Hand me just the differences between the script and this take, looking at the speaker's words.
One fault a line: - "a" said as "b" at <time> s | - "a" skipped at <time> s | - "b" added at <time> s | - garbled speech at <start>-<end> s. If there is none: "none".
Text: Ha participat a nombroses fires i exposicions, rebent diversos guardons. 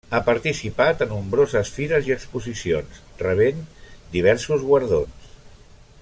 none